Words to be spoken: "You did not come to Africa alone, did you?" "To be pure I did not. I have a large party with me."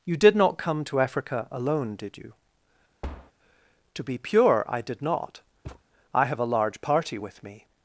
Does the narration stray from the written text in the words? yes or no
no